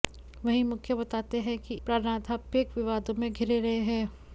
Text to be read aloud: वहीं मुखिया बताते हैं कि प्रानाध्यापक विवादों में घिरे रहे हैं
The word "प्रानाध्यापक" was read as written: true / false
true